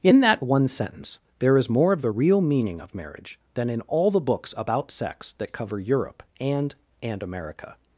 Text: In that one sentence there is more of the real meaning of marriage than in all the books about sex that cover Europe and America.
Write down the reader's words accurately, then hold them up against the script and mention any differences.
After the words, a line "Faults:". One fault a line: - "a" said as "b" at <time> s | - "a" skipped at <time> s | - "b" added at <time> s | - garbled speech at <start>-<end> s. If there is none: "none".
In that one sentence there is more of the real meaning of marriage than in all the books about sex that cover Europe and and America.
Faults:
- "and" added at 7.0 s